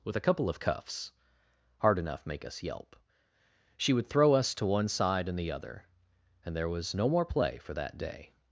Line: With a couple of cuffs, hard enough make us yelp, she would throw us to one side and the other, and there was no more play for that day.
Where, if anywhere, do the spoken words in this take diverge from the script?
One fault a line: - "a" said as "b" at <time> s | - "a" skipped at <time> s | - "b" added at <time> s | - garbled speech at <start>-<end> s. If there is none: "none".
none